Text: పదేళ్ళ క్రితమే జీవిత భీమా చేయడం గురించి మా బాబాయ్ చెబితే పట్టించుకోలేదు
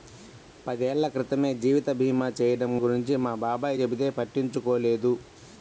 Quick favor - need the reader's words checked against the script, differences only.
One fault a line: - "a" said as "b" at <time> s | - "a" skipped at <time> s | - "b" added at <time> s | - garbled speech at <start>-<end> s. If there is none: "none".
none